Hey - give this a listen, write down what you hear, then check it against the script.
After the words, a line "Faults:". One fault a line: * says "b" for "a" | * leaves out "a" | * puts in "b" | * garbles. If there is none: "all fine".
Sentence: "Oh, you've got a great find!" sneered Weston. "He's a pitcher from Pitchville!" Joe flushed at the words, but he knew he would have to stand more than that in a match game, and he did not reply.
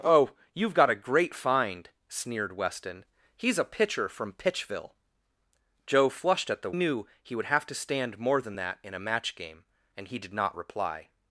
"Oh, you've got a great find!" sneered Weston. "He's a pitcher from Pitchville!" Joe flushed at the knew he would have to stand more than that in a match game, and he did not reply.
Faults:
* leaves out "words but he"